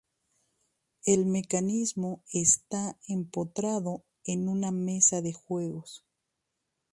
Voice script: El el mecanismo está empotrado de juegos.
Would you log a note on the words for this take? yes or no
yes